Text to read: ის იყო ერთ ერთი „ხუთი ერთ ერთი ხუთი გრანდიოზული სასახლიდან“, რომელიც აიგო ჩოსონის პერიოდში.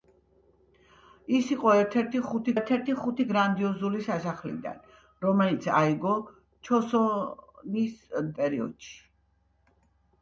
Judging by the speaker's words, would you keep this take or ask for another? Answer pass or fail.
pass